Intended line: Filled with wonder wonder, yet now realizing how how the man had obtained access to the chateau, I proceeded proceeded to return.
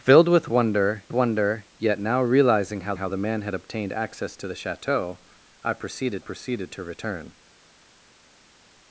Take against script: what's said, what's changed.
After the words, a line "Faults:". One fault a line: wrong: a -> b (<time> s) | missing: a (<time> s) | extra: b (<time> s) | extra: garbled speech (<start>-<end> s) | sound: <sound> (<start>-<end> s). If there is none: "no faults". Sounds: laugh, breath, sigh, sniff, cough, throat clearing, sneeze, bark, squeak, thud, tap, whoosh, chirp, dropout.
Filled with wonder wonder, yet now realizing how how the man had obtained access to the chateau, I proceeded proceeded to return.
Faults:
no faults